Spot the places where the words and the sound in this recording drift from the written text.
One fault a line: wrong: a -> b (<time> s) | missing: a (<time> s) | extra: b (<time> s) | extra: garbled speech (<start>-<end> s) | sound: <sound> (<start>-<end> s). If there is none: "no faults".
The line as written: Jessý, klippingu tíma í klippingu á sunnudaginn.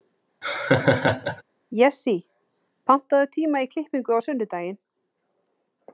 sound: laugh (0.4-1.4 s)
wrong: klippingu -> pantaðu (2.9 s)